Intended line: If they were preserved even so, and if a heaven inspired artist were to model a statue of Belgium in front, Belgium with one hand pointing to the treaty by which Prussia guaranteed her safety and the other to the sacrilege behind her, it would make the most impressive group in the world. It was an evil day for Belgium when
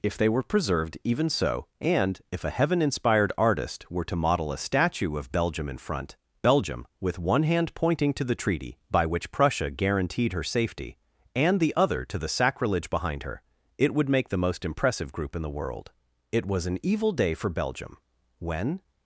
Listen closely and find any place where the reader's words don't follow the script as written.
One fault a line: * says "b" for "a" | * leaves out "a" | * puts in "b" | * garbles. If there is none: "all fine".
all fine